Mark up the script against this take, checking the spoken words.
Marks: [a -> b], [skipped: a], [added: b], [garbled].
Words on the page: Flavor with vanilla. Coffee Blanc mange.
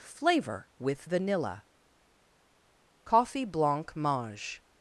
Flavor with vanilla. Coffee Blanc mange.